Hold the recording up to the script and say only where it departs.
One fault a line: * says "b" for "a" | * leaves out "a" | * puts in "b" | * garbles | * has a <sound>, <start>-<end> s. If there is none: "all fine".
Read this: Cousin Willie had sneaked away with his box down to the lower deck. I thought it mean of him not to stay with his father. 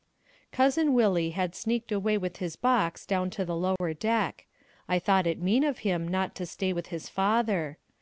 * has a dropout, 3.8-3.8 s